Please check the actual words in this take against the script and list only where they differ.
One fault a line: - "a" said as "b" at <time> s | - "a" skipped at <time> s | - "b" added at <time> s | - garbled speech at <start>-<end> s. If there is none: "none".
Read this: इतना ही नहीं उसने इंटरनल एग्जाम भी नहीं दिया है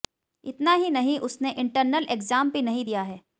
none